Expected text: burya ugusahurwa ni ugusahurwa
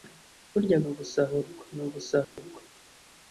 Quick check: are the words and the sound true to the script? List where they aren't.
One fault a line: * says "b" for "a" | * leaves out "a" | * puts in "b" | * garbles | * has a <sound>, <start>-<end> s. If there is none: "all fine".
* has a dropout, 2.2-2.4 s